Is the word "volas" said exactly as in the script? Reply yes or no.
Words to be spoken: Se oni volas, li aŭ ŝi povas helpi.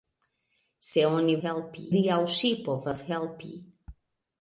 no